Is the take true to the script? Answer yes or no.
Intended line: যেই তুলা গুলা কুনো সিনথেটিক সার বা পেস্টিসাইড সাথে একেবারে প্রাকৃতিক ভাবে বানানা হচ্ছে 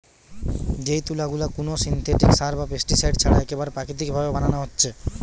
no